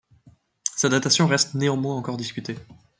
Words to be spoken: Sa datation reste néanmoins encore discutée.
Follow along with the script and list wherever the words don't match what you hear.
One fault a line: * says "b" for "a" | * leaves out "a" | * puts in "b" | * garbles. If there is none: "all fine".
all fine